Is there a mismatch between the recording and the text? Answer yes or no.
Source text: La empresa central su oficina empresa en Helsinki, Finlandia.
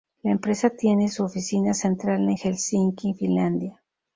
yes